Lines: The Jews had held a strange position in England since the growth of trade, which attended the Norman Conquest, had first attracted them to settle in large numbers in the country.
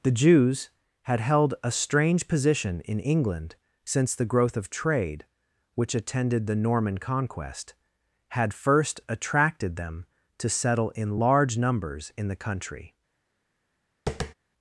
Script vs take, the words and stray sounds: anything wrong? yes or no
yes